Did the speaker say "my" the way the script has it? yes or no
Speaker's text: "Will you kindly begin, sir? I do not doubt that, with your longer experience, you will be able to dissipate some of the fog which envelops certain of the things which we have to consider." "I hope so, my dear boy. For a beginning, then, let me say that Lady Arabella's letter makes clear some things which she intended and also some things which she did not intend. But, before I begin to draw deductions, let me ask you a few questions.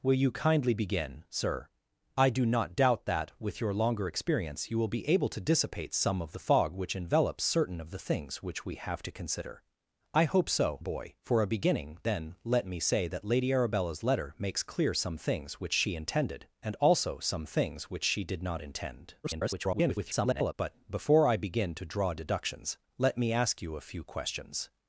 no